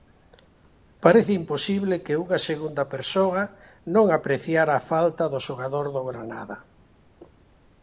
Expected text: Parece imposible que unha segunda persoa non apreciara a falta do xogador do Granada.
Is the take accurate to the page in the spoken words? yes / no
yes